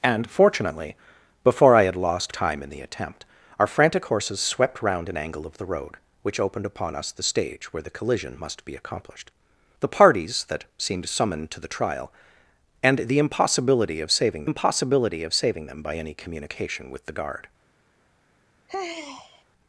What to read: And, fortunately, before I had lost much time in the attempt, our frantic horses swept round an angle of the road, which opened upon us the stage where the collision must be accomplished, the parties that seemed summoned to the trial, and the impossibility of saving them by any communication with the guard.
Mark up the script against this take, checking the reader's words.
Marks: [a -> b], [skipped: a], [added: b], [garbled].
And, fortunately, before I had lost [skipped: much] time in the attempt, our frantic horses swept round an angle of the road, which opened upon us the stage where the collision must be accomplished, the parties that seemed summoned to the trial, and the impossibility of saving [added: impossibility of saving] them by any communication with the guard.